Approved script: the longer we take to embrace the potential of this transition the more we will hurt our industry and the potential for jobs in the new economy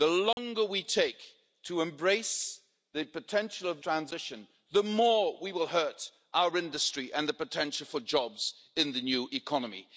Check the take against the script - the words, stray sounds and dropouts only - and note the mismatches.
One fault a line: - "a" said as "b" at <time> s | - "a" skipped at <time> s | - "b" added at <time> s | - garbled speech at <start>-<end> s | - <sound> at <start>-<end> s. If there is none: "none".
- dropout at 0.3-0.4 s
- "this" skipped at 3.8 s